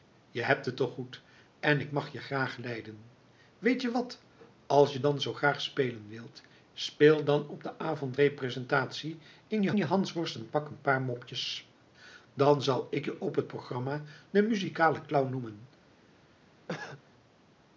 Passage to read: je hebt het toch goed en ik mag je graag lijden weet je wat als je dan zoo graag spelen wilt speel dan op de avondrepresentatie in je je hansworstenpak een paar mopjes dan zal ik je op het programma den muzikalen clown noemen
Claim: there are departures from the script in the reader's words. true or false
false